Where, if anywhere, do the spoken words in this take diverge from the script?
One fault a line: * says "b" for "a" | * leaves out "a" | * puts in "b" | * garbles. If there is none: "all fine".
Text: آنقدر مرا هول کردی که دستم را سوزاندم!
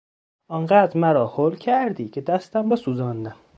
all fine